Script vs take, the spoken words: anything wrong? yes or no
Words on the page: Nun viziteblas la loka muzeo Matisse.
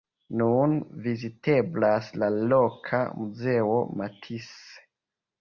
no